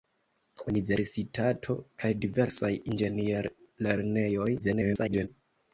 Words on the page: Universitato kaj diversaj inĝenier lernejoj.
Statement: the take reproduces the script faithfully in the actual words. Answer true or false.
false